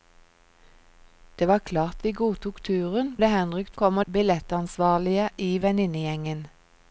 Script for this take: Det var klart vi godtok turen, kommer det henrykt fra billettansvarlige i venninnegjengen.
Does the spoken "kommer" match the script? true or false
false